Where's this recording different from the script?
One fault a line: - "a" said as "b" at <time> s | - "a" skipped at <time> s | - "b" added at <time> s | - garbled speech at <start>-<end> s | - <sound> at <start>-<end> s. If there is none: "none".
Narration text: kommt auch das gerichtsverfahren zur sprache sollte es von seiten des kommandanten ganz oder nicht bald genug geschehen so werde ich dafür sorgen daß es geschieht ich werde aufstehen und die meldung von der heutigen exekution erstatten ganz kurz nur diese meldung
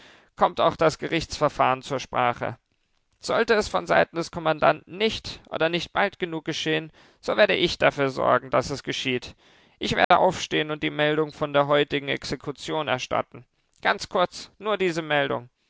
- "ganz" said as "nicht" at 5.0 s
- dropout at 10.0-10.1 s